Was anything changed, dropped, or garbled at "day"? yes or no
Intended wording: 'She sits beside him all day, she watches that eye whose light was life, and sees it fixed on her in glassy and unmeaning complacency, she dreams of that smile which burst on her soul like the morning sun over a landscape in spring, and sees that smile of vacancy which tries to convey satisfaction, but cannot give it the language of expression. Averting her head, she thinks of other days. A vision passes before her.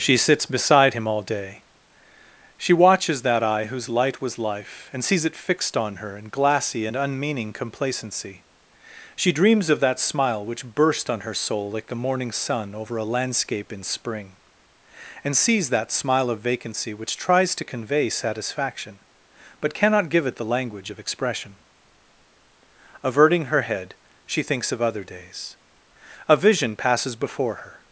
no